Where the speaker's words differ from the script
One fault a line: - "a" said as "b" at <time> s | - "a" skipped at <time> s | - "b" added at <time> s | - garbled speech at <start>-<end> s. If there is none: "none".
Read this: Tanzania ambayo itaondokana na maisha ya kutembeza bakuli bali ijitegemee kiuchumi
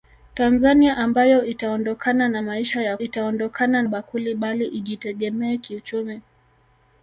- "kutembeza" said as "itaondokana" at 3.0 s